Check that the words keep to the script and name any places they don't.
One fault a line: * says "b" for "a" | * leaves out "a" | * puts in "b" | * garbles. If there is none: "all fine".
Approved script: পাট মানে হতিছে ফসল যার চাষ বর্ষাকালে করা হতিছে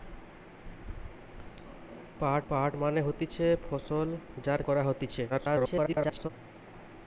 * puts in "পাট"
* leaves out "চাষ বর্ষাকালে"
* garbles